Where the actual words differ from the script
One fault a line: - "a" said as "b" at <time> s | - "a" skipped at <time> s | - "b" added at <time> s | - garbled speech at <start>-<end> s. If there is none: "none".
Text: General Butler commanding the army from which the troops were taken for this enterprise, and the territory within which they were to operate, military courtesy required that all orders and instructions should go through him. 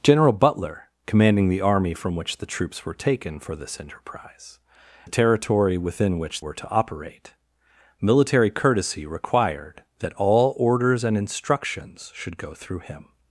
- "and" skipped at 4.6 s
- "they" skipped at 6.4 s